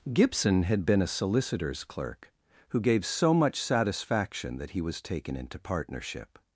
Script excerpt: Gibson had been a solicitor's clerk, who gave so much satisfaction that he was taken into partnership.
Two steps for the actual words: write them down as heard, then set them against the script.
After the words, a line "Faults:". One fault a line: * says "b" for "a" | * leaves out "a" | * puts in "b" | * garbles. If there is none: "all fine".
Gibson had been a solicitor's clerk, who gave so much satisfaction that he was taken into partnership.
Faults:
all fine